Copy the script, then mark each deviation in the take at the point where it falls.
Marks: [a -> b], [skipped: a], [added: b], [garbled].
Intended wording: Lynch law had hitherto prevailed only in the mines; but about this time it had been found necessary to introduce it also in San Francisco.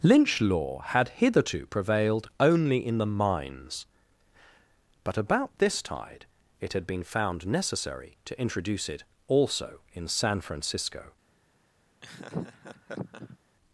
Lynch law had hitherto prevailed only in the mines; but about this [time -> tide] it had been found necessary to introduce it also in San Francisco.